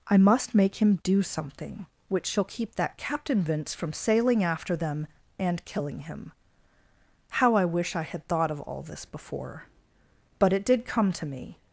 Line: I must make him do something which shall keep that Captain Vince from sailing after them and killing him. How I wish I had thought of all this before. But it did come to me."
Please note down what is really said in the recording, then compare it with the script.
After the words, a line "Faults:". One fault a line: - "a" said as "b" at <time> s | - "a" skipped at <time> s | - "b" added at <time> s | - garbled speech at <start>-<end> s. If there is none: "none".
I must make him do something which shall keep that Captain Vince from sailing after them and killing him. How I wish I had thought of all this before. But it did come to me."
Faults:
none